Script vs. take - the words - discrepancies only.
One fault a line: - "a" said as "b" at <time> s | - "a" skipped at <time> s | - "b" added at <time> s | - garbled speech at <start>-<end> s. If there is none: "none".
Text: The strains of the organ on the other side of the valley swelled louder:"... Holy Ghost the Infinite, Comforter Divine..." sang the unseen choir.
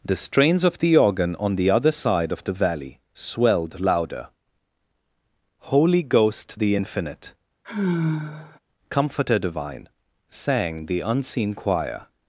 none